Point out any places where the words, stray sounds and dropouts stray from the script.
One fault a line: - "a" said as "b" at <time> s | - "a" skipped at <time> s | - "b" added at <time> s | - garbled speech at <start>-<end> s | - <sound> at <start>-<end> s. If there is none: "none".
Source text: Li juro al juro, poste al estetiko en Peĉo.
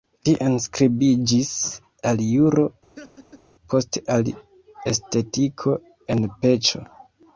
- "juro" said as "enskribiĝis" at 0.4 s
- laugh at 3.0-3.4 s